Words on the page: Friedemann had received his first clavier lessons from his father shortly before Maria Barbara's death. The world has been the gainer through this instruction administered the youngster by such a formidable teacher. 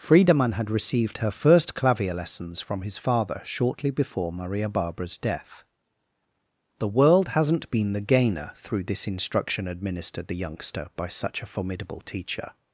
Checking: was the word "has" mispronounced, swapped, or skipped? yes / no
yes